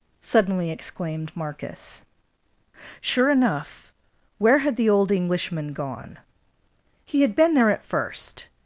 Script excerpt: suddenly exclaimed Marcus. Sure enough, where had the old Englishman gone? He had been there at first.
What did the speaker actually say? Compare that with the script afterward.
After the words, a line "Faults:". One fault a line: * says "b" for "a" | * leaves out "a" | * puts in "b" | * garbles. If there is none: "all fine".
suddenly exclaimed Marcus. Sure enough, where had the old Englishman gone? He had been there at first.
Faults:
all fine